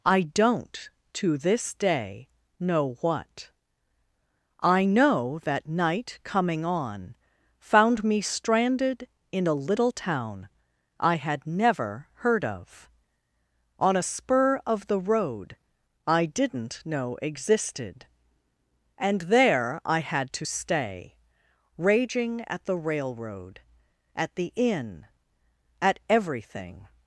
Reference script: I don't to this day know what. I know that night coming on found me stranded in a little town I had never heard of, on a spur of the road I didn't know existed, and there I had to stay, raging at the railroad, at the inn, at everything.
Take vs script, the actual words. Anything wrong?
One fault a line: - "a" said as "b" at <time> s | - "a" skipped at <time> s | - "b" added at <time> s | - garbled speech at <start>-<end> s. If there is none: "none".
none